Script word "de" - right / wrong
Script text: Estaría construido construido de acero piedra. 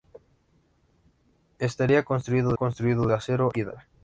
right